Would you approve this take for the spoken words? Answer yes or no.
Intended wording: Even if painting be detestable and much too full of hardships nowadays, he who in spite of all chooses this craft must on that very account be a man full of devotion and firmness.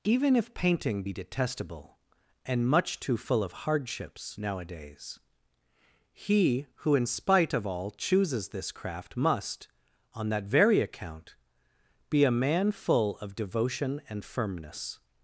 yes